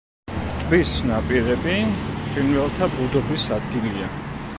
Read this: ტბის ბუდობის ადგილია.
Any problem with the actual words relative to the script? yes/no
yes